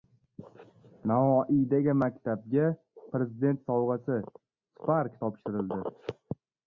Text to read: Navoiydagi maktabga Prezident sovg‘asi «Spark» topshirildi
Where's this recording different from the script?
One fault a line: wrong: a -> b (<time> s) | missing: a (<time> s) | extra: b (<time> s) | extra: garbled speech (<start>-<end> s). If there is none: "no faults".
no faults